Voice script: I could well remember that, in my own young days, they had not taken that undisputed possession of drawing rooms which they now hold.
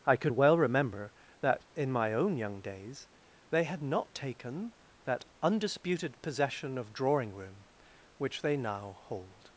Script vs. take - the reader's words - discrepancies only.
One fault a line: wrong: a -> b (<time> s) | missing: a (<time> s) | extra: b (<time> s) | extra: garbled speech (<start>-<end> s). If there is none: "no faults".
wrong: rooms -> room (7.3 s)